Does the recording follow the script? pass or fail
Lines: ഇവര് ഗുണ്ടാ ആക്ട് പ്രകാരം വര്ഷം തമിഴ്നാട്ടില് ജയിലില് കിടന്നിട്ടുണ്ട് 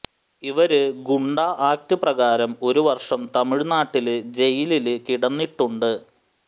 fail